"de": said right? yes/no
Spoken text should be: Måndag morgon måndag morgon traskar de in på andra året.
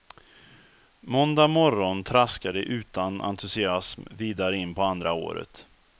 no